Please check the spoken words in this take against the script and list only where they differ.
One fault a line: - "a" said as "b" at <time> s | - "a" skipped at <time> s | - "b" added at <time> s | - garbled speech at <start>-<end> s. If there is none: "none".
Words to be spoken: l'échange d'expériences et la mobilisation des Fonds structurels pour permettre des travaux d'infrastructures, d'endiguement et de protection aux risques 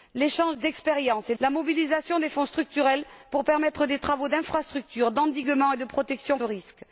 none